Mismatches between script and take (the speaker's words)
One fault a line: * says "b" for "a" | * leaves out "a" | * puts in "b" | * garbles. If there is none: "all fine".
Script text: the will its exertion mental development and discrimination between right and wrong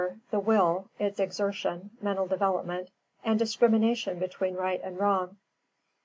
all fine